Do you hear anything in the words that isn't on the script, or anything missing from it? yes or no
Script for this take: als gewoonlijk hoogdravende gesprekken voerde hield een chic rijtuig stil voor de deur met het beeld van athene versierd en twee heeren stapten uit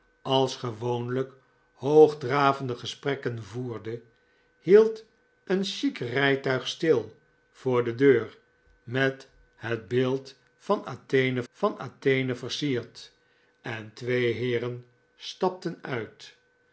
yes